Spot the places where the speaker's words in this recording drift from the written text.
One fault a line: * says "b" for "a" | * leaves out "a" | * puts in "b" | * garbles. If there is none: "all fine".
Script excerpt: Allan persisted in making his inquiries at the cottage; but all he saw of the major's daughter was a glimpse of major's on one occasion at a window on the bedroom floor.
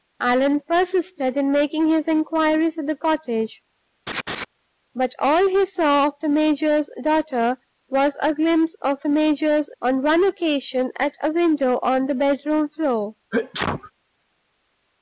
all fine